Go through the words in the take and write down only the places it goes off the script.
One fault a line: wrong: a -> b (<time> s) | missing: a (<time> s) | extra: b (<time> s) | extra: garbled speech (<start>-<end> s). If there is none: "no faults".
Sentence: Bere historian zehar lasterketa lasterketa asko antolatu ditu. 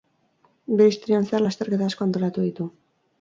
missing: lasterketa (1.9 s)